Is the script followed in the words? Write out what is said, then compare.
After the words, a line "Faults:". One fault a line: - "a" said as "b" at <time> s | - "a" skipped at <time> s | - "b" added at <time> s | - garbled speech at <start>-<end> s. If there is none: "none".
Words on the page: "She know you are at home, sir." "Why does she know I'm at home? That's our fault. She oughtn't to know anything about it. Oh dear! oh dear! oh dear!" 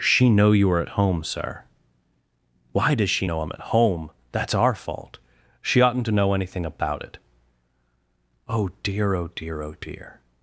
"She know you are at home, sir." "Why does she know I'm at home? That's our fault. She oughtn't to know anything about it. Oh dear! oh dear! oh dear!"
Faults:
none